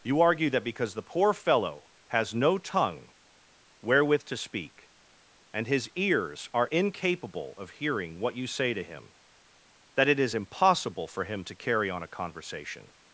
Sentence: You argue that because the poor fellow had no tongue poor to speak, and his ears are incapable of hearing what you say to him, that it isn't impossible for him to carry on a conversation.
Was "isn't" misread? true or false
true